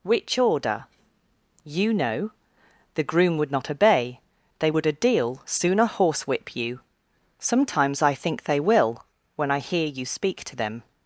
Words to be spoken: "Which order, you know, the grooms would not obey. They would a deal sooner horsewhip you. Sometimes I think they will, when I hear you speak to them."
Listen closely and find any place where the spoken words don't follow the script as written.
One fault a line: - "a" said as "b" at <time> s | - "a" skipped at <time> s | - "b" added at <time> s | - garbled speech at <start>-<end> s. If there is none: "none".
- "grooms" said as "groom" at 3.0 s